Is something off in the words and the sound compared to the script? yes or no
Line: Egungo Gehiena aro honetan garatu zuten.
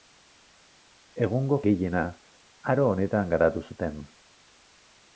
no